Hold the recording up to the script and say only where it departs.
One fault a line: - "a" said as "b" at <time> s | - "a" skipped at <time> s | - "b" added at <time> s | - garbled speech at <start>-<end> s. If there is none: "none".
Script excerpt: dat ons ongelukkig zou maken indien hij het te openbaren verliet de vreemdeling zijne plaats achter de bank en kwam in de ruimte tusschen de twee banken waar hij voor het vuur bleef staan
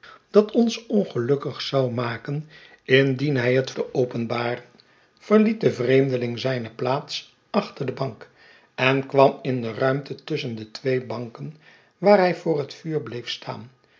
none